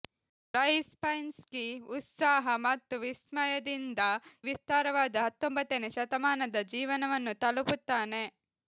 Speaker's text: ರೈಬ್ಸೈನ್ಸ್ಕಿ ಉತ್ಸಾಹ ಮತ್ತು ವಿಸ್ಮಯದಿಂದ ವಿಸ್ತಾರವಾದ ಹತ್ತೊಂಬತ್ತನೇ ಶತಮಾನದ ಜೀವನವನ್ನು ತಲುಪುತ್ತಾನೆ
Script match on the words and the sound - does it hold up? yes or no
yes